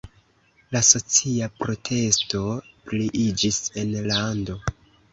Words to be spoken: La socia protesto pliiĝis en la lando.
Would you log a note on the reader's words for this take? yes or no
yes